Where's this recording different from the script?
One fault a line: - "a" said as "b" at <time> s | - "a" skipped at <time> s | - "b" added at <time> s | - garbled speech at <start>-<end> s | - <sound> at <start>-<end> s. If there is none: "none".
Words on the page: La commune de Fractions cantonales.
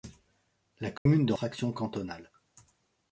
- dropout at 1.0-1.1 s